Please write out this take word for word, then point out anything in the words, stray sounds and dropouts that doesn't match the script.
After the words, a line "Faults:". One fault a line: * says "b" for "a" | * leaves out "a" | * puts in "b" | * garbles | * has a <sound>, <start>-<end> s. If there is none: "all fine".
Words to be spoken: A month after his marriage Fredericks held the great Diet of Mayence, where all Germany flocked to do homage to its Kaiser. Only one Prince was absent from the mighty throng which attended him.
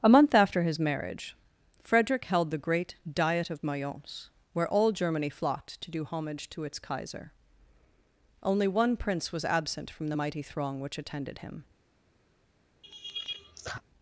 A month after his marriage Frederick held the great Diet of Mayence, where all Germany flocked to do homage to its Kaiser. Only one Prince was absent from the mighty throng which attended him.
Faults:
* says "Frederick" for "Fredericks"
* has a laugh, 12.8-13.8 s